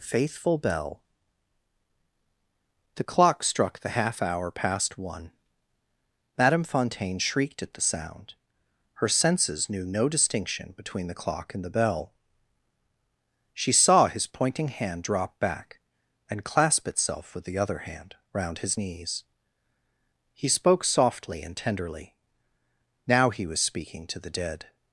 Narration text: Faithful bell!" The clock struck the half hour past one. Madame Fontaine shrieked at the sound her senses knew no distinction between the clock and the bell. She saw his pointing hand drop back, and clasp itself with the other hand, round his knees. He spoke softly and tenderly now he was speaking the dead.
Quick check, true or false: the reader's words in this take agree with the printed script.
false